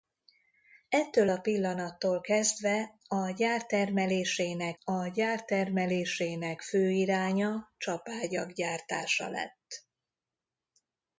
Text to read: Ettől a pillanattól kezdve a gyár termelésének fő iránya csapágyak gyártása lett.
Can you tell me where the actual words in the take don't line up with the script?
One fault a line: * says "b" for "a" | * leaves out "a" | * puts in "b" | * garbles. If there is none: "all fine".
* puts in "a gyár termelésének"